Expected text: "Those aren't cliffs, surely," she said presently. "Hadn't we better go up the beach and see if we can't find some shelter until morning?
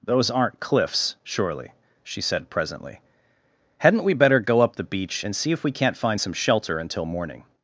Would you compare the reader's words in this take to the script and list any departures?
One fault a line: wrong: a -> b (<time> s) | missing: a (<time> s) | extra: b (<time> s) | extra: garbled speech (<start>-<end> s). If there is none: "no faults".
no faults